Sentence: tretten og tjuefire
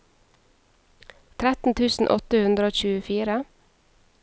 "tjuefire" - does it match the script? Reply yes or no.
yes